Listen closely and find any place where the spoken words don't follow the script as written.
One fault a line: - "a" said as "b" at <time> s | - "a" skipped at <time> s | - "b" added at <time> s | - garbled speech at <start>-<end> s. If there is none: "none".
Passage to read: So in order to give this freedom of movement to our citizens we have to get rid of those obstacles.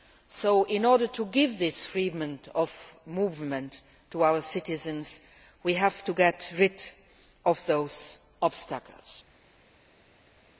none